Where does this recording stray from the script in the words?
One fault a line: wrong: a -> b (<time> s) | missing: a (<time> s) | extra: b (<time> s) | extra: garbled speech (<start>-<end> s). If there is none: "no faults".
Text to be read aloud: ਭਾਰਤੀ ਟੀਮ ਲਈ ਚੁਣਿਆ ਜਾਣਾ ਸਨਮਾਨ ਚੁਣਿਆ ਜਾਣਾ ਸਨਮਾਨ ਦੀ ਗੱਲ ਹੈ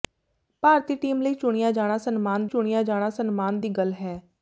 no faults